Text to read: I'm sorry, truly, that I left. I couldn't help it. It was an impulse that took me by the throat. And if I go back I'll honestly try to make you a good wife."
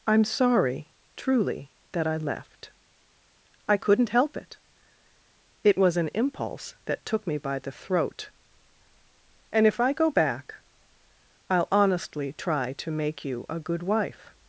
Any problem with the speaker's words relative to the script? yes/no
no